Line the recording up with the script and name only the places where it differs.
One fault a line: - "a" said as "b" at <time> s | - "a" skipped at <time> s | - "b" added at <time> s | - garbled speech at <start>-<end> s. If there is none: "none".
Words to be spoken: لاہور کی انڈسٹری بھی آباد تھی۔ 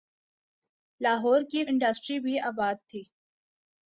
none